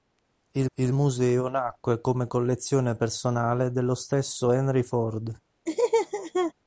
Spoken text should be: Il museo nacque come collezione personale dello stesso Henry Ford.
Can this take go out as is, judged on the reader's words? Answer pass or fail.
fail